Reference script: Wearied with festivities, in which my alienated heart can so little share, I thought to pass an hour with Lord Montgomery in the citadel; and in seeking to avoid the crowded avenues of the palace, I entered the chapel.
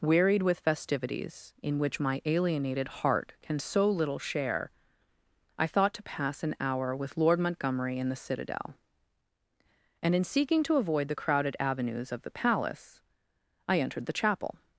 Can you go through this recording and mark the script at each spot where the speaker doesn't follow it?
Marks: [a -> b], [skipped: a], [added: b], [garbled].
Wearied with festivities, in which my alienated heart can so little share, I thought to pass an hour with Lord Montgomery in the citadel; and in seeking to avoid the crowded avenues of the palace, I entered the chapel.